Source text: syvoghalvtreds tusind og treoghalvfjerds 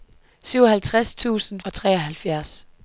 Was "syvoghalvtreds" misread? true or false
false